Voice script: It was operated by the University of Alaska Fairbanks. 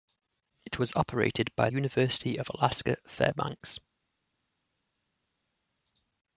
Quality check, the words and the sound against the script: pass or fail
fail